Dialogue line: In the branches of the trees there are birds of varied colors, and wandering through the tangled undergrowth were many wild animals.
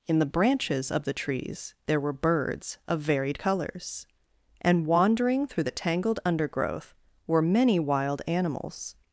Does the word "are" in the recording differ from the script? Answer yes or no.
yes